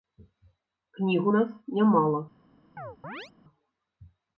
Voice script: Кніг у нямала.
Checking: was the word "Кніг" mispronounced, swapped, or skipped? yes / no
no